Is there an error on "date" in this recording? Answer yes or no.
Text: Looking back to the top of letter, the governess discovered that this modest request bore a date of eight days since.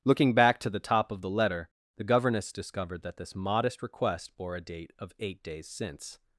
no